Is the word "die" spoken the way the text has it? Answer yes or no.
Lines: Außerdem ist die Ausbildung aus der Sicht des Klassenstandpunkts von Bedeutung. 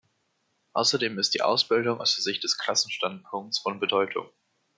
yes